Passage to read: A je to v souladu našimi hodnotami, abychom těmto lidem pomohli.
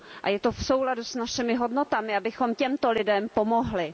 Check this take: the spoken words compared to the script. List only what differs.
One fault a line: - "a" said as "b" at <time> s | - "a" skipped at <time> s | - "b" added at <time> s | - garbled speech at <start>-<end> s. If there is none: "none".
- "s" added at 1.0 s